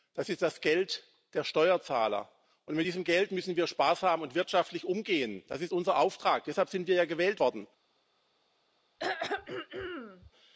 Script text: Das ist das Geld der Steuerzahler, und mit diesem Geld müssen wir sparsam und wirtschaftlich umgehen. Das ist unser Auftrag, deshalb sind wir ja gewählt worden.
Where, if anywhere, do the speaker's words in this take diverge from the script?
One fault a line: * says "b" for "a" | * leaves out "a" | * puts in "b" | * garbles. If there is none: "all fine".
all fine